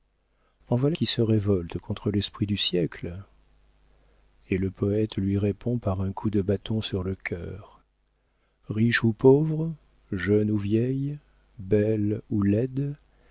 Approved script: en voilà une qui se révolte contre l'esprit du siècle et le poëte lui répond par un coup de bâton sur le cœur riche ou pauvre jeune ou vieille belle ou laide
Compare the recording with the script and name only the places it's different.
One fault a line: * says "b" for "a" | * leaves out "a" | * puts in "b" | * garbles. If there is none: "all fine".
* leaves out "une"